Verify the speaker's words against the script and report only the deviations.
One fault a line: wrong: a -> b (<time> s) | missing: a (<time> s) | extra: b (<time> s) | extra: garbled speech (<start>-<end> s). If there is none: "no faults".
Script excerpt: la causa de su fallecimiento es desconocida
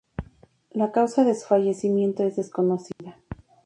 no faults